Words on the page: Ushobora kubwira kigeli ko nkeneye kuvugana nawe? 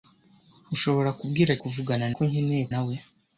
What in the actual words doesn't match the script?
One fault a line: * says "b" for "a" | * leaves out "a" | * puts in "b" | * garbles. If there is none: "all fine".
* says "kuvugana" for "kigeli"
* leaves out "kuvugana"